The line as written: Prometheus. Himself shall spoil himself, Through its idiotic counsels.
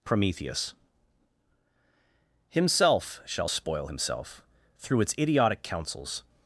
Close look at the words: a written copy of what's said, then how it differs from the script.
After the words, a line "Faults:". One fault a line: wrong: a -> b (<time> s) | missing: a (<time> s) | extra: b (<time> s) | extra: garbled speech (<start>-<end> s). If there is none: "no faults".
Prometheus. Himself shall spoil himself, Through its idiotic counsels.
Faults:
no faults